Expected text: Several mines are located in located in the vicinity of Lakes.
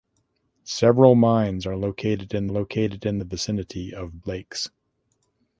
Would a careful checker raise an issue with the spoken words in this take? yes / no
no